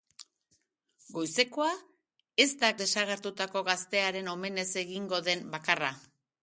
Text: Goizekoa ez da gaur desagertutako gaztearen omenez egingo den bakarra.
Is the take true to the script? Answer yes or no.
no